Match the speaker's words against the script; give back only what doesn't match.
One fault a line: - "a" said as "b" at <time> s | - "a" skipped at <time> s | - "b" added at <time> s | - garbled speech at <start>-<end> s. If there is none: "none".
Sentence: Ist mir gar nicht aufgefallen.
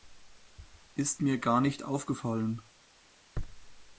none